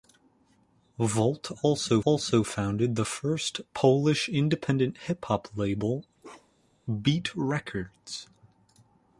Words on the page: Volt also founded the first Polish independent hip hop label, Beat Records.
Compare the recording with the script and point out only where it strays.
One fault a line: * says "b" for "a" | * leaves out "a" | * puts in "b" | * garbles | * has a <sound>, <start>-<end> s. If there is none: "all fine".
* puts in "also"
* has a bark, 6.2-6.8 s